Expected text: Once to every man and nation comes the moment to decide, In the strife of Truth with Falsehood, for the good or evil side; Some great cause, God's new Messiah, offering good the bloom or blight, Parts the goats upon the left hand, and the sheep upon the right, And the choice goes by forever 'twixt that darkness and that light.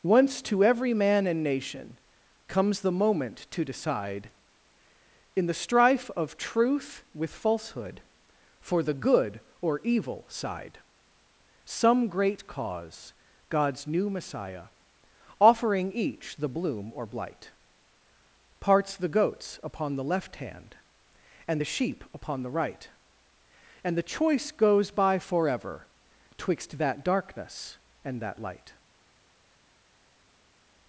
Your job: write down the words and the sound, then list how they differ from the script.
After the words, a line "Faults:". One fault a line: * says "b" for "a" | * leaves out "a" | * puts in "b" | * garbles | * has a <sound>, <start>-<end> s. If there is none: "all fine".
Once to every man and nation comes the moment to decide, In the strife of Truth with Falsehood, for the good or evil side; Some great cause, God's new Messiah, offering each the bloom or blight, Parts the goats upon the left hand, and the sheep upon the right, And the choice goes by forever 'twixt that darkness and that light.
Faults:
* says "each" for "good"